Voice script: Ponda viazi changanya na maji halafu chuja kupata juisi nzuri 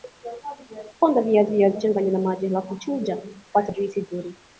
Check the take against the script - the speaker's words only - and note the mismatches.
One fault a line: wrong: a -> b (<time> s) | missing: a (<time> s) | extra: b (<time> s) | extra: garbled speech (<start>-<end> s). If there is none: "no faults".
extra: viazi (1.5 s)